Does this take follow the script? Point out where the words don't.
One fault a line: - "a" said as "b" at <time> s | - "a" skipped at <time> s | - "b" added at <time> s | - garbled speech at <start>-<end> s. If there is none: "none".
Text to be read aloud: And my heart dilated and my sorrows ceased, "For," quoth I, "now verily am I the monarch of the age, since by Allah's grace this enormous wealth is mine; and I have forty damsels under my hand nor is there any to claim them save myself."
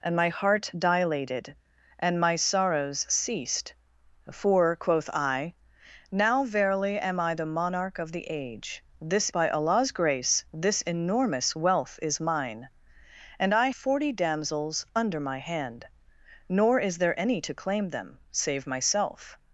- "since" said as "this" at 9.0 s
- "have" skipped at 13.7 s